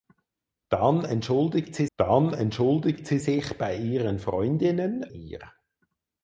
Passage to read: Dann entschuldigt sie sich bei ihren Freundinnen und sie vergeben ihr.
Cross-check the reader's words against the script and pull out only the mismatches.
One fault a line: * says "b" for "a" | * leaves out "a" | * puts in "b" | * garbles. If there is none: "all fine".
* puts in "dann entschuldigt sie"
* leaves out "und sie vergeben"